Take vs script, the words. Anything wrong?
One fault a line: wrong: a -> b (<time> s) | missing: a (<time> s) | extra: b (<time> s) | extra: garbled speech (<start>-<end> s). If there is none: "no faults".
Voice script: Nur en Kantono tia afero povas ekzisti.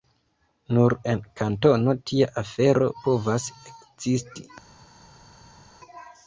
no faults